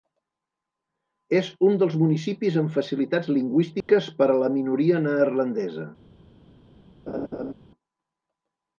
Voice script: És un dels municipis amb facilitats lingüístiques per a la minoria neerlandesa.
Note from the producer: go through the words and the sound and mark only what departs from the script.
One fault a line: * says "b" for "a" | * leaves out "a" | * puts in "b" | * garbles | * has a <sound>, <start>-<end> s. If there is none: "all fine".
* has a dropout, 3.8-3.9 s
* has a laugh, 7.1-7.5 s